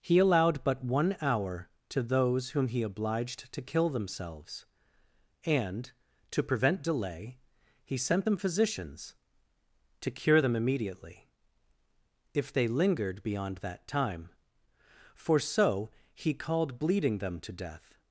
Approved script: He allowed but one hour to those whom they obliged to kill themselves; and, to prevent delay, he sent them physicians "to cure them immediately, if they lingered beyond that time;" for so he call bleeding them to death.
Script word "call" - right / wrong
wrong